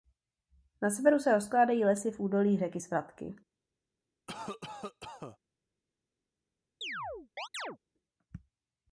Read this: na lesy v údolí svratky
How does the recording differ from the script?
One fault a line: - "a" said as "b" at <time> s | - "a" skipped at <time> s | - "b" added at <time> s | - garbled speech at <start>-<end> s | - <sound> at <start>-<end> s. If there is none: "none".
- "severu se rozkládají" added at 0.9 s
- "řeky" added at 2.6 s
- cough at 4.3-5.4 s
- chirp at 6.8-7.8 s